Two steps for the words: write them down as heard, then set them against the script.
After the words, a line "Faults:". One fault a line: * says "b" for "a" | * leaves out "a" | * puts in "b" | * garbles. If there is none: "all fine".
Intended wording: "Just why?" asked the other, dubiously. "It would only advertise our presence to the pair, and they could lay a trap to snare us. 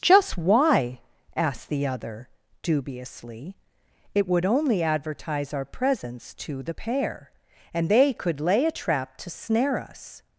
"Just why?" asked the other, dubiously. "It would only advertise our presence to the pair, and they could lay a trap to snare us.
Faults:
all fine